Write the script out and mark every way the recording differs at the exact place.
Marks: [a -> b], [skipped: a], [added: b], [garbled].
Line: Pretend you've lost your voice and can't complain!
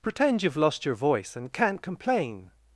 Pretend you've lost your voice and can't complain!